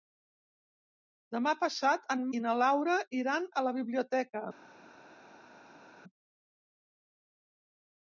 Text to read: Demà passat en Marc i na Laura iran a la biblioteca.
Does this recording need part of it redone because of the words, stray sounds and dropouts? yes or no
yes